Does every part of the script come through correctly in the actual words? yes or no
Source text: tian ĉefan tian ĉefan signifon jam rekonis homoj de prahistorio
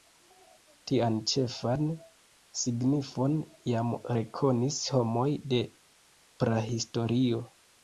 no